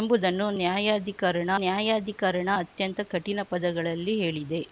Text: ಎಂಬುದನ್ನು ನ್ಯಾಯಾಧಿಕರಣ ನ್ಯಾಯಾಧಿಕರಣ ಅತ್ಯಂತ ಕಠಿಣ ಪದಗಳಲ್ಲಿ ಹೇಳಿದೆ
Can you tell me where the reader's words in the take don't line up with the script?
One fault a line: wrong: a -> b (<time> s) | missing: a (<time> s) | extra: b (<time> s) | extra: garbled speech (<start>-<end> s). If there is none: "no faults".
no faults